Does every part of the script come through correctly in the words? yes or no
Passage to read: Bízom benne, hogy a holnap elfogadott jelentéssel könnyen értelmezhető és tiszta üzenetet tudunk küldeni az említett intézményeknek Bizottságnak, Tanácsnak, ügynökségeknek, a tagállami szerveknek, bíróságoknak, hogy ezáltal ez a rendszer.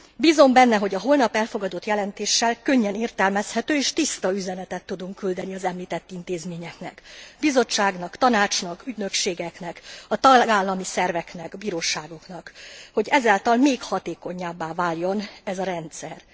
no